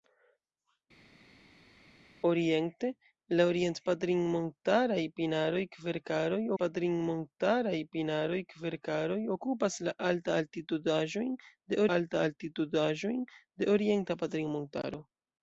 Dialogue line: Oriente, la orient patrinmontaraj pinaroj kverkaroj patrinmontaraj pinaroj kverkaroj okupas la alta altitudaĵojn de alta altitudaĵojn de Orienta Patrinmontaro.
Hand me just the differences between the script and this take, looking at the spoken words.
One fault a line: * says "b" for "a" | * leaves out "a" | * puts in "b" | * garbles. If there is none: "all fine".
all fine